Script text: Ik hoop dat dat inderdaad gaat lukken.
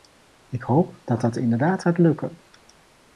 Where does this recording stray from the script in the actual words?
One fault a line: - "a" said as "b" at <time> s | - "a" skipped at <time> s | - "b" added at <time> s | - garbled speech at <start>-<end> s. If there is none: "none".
none